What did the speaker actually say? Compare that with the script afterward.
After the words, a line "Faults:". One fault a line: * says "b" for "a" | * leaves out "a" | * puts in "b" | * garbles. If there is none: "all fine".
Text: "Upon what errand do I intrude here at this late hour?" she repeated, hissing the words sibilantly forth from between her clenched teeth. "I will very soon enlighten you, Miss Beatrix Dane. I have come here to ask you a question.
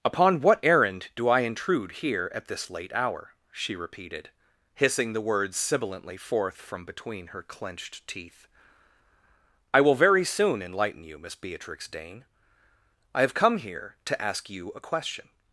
"Upon what errand do I intrude here at this late hour?" she repeated, hissing the words sibilantly forth from between her clenched teeth. "I will very soon enlighten you, Miss Beatrix Dane. I have come here to ask you a question.
Faults:
all fine